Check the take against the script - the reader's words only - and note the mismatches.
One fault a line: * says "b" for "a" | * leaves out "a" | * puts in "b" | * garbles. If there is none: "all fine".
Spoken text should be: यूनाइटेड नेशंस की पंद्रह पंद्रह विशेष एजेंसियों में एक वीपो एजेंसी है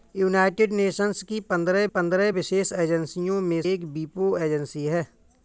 all fine